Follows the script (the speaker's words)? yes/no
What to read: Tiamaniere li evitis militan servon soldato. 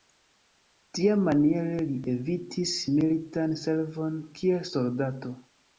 no